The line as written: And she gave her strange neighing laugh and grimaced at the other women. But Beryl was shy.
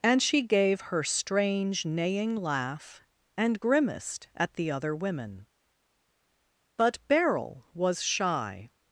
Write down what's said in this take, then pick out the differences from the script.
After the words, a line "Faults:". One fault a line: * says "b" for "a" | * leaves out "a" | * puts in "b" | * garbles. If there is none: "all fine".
And she gave her strange neighing laugh and grimaced at the other women. But Beryl was shy.
Faults:
all fine